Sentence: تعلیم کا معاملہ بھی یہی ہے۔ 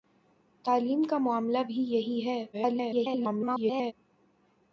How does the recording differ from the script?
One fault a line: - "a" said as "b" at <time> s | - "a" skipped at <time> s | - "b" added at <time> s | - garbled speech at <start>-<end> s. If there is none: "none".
- garbled speech at 2.5-3.9 s